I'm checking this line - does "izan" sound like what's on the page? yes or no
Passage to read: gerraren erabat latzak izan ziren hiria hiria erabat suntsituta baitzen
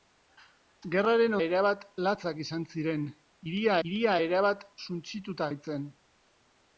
yes